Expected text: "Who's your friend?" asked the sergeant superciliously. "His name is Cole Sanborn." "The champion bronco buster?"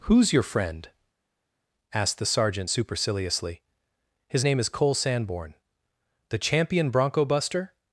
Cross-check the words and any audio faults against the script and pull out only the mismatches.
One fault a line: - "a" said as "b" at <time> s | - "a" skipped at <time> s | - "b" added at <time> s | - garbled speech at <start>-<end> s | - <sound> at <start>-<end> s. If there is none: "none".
none